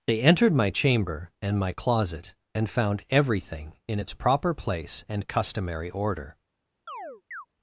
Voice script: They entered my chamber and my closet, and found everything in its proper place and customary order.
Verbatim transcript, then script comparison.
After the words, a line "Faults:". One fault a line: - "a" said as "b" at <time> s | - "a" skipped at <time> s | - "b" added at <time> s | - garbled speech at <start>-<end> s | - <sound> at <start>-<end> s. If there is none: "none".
They entered my chamber and my closet, and found everything in its proper place and customary order.
Faults:
- chirp at 6.9-7.5 s